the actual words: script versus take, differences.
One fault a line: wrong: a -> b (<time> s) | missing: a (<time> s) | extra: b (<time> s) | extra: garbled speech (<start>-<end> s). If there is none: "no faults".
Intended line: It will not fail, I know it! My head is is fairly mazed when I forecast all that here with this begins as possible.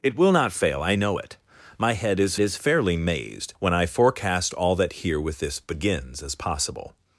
no faults